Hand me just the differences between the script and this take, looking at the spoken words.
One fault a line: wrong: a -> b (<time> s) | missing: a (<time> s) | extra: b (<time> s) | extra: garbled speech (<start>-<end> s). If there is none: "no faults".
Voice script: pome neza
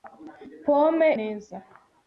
no faults